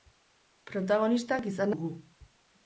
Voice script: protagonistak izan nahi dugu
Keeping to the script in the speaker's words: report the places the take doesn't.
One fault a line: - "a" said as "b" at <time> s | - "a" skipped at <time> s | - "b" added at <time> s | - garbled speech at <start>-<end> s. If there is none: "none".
- "nahi" skipped at 1.8 s